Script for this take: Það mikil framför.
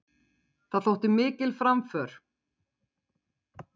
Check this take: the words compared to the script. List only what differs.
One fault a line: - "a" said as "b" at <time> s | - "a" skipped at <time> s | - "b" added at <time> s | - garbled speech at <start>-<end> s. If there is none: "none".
- "þótti" added at 0.9 s